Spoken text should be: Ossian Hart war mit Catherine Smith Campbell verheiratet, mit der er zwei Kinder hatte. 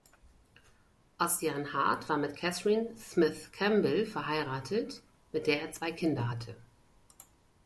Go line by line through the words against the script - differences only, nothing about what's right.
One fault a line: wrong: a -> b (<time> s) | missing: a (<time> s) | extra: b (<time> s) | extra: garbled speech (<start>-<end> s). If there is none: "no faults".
no faults